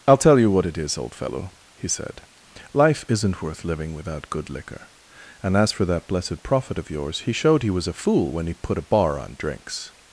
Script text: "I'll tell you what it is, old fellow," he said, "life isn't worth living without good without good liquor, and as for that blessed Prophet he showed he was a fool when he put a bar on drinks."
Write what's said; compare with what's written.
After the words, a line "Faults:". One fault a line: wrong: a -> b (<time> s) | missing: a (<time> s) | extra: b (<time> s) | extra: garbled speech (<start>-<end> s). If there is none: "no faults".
"I'll tell you what it is, old fellow," he said, "life isn't worth living without good liquor, and as for that blessed Prophet of yours, he showed he was a fool when he put a bar on drinks."
Faults:
missing: without good (4.5 s)
extra: of yours (6.8 s)